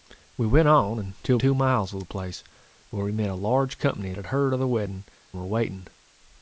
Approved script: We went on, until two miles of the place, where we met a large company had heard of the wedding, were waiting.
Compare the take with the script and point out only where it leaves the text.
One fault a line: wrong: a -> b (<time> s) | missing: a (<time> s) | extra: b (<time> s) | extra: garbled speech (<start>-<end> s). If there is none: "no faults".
no faults